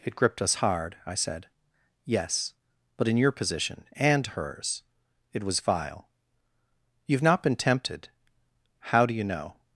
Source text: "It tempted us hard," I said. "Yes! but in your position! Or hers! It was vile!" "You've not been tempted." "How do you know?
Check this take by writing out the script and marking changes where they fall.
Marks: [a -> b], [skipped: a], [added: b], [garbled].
"It [tempted -> gripped] us hard," I said. "Yes! but in your position! [Or -> And] hers! It was vile!" "You've not been tempted." "How do you know?